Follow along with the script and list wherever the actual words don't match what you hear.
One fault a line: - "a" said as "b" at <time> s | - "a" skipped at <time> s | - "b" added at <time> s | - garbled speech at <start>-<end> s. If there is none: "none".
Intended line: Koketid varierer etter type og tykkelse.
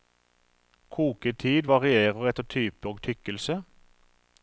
none